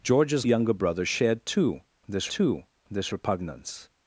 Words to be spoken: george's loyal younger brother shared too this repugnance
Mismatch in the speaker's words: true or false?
true